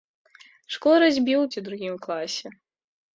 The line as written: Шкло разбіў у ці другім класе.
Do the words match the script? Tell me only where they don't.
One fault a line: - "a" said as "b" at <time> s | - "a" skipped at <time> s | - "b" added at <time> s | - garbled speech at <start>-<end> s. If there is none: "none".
none